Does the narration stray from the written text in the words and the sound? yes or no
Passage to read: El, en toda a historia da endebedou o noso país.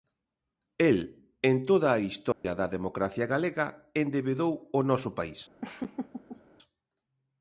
yes